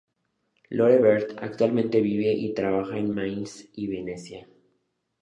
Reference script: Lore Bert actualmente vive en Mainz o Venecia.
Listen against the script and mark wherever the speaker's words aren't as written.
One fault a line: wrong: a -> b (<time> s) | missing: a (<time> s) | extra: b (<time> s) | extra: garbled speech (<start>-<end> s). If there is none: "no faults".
extra: y trabaja (2.3 s)
wrong: o -> y (3.7 s)